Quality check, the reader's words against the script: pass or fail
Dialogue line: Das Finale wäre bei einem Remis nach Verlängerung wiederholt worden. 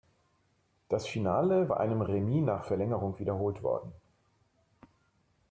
fail